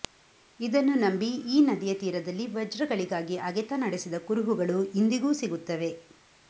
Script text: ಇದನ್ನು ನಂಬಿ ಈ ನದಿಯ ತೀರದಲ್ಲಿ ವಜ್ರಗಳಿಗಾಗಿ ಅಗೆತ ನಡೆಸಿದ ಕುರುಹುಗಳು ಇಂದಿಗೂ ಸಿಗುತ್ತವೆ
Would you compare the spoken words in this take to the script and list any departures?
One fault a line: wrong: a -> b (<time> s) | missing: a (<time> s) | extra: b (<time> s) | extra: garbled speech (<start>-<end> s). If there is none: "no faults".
no faults